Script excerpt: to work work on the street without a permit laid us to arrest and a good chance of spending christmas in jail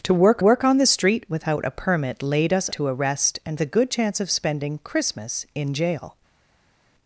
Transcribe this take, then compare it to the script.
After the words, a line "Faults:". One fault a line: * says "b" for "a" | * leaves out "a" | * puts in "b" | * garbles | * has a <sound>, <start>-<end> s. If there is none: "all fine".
to work work on the street without a permit laid us to arrest and a good chance of spending christmas in jail
Faults:
all fine